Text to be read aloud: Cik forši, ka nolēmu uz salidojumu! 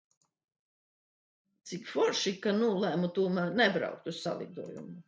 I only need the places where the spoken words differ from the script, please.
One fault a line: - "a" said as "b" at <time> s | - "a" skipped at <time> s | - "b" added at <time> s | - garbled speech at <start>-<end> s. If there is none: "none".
- "tomēr nebraukt" added at 3.2 s